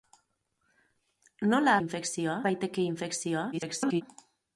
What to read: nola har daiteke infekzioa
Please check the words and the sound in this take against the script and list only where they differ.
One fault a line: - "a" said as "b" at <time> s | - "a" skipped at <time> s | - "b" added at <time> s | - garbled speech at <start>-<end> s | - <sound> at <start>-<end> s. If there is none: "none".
- "har" said as "infekzioa" at 1.8 s
- garbled speech at 3.5-4.0 s